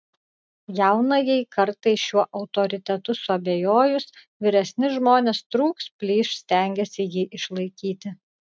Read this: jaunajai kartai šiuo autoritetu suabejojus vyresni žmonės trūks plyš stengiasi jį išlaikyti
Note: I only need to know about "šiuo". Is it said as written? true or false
true